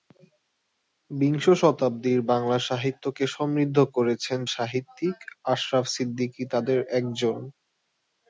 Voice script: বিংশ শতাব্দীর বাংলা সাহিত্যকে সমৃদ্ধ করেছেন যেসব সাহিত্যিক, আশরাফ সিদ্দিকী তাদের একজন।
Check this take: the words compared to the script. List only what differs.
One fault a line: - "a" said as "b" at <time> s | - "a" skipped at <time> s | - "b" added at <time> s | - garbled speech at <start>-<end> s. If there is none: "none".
- "যেসব" skipped at 4.4 s